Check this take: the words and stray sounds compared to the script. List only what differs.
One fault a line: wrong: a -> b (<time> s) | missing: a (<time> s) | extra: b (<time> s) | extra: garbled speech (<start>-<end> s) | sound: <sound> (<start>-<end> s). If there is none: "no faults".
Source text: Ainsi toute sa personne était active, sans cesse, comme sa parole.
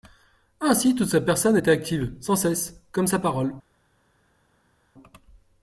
no faults